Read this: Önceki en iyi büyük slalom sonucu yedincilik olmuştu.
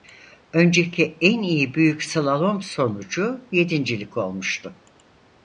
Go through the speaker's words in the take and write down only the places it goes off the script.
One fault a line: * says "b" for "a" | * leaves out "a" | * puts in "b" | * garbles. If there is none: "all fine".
all fine